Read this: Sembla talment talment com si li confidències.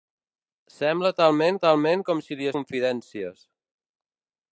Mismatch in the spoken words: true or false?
false